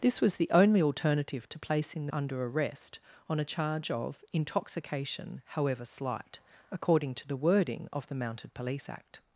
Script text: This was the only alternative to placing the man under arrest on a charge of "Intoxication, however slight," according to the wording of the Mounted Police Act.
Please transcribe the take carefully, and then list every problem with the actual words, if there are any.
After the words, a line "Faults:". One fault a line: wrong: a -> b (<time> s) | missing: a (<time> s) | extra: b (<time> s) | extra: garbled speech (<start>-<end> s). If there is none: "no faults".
This was the only alternative to placing the under arrest on a charge of "Intoxication, however slight," according to the wording of the Mounted Police Act.
Faults:
missing: man (2.1 s)